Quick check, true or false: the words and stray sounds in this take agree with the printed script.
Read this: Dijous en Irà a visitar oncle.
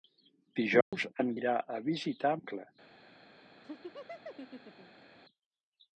false